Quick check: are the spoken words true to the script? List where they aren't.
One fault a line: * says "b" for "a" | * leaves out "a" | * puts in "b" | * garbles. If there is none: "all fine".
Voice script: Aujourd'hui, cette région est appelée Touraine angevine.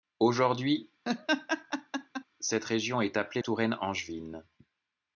all fine